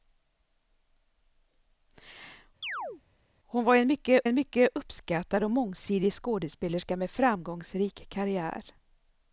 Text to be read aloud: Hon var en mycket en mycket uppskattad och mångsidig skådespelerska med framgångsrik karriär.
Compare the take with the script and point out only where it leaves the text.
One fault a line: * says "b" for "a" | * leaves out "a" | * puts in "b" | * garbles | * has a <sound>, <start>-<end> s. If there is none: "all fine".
* has a chirp, 2.6-3.0 s